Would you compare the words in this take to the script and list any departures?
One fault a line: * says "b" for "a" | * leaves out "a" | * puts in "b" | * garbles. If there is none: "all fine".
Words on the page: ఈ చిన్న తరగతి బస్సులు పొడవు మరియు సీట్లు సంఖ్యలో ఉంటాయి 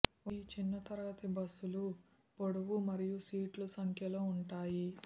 all fine